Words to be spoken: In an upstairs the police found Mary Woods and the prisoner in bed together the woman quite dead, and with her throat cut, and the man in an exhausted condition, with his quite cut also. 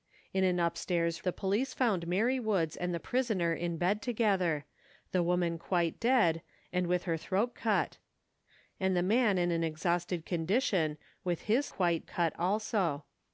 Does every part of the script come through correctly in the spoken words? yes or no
yes